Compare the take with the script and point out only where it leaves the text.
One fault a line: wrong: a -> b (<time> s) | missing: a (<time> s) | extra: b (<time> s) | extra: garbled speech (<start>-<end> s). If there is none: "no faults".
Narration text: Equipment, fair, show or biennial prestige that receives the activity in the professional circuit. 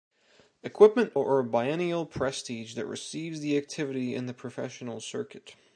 missing: fair show (1.2 s)